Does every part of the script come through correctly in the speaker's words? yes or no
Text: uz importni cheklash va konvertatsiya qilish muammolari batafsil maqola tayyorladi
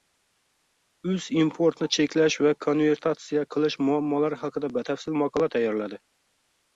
no